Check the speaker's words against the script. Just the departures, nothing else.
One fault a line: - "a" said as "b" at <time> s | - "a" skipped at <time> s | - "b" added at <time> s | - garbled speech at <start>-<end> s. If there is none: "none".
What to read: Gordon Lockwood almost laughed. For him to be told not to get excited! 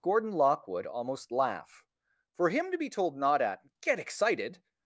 - "laughed" said as "laugh" at 1.3 s
- "to" said as "at" at 3.4 s